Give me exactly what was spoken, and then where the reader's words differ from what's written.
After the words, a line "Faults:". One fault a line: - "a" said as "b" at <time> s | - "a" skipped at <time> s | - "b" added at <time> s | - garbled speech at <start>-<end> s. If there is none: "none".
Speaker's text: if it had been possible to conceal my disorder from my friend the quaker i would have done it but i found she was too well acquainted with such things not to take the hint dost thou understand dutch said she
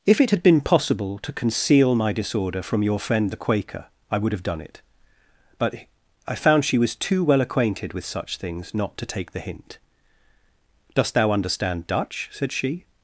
if it had been possible to conceal my disorder from your friend the quaker i would have done it but i found she was too well acquainted with such things not to take the hint dost thou understand dutch said she
Faults:
- "my" said as "your" at 2.8 s